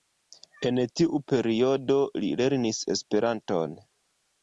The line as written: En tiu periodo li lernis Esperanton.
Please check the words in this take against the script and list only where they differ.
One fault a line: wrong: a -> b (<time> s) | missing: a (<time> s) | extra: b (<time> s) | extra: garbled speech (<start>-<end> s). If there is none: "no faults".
no faults